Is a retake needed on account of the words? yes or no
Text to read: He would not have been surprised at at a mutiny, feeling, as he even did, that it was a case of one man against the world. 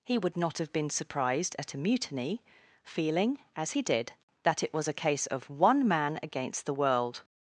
yes